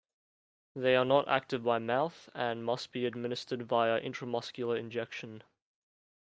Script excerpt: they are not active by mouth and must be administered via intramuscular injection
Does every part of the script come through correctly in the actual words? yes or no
yes